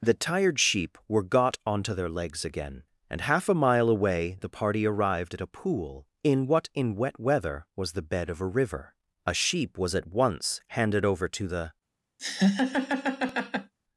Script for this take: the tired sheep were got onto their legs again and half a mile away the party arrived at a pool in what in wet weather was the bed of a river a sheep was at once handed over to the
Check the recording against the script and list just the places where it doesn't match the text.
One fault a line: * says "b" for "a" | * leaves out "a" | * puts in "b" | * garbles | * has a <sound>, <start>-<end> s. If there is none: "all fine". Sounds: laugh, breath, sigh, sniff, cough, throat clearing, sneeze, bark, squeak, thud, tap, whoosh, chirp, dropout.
* has a laugh, 12.2-13.7 s